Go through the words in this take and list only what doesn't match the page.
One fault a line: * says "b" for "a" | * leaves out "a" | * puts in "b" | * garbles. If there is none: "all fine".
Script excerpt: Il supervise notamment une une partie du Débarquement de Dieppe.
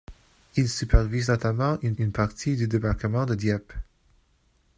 all fine